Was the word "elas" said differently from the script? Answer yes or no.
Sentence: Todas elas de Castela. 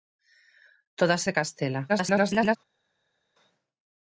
yes